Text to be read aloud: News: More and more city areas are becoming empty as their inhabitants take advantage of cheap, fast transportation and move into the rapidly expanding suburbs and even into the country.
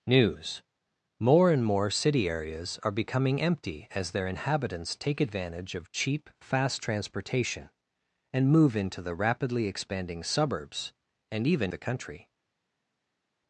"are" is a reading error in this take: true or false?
false